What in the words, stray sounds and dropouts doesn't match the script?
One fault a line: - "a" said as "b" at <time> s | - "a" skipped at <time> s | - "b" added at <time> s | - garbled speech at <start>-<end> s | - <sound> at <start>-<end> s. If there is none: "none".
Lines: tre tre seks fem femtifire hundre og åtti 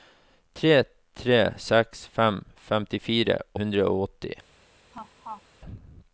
- laugh at 4.9-5.4 s